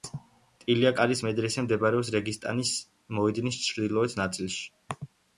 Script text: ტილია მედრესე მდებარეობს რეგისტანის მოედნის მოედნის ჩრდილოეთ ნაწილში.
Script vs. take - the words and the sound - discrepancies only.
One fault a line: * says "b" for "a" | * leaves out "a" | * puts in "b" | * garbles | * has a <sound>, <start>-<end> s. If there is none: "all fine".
* puts in "კარის"
* leaves out "მოედნის"